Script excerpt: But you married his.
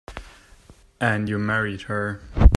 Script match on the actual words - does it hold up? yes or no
no